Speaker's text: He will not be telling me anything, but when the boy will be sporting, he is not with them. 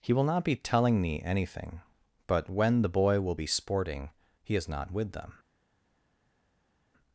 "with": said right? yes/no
yes